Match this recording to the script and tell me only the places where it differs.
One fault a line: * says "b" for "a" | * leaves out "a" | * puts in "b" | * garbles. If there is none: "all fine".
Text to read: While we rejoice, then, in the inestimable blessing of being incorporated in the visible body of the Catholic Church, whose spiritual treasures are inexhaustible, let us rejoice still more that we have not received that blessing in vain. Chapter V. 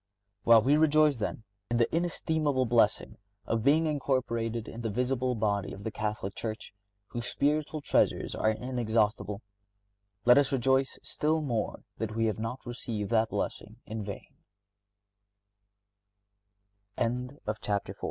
all fine